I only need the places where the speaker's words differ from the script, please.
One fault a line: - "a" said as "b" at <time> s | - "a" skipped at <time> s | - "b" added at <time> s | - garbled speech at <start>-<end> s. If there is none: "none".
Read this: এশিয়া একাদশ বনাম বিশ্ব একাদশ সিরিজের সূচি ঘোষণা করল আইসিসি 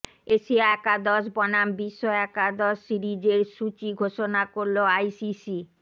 none